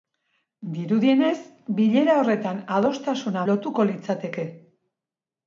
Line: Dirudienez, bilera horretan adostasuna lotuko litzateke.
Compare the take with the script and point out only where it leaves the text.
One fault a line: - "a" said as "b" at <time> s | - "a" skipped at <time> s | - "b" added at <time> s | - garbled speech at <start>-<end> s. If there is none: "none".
none